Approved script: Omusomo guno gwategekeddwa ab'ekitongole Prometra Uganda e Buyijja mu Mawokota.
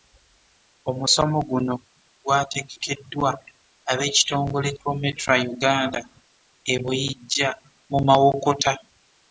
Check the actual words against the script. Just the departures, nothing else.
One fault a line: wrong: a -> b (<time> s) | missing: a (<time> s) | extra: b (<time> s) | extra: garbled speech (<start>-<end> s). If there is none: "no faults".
no faults